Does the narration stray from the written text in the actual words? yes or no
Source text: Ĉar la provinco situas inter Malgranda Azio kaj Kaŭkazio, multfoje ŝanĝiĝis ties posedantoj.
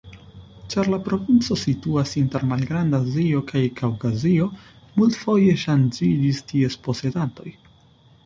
no